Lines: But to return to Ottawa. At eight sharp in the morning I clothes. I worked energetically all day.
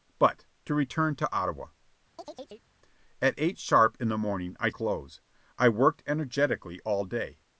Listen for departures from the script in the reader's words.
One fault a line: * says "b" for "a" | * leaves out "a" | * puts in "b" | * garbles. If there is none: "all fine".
all fine